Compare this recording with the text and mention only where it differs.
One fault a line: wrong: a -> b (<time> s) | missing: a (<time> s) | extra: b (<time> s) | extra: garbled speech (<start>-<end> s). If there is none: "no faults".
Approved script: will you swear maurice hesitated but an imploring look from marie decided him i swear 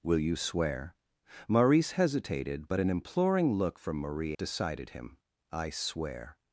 no faults